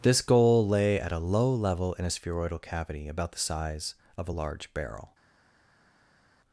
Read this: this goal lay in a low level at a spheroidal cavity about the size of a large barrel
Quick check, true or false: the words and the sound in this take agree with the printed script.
false